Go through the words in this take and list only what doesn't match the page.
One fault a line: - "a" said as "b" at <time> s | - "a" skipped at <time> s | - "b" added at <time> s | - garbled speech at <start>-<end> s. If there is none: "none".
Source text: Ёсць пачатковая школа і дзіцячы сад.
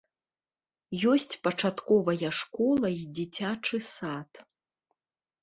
none